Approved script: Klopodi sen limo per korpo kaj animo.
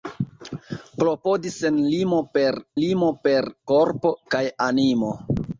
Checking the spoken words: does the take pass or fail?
fail